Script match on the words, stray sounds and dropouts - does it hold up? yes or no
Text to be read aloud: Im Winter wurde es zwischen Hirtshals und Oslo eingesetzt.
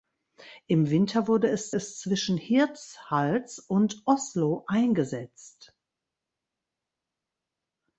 no